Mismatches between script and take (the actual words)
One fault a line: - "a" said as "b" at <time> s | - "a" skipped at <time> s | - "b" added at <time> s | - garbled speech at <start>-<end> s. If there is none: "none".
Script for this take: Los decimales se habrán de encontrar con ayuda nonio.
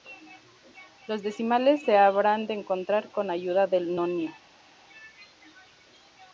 - "del" added at 3.7 s